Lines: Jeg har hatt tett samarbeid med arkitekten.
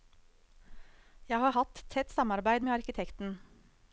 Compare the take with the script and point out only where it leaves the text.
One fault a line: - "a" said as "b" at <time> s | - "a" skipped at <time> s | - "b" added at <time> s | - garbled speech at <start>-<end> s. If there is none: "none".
none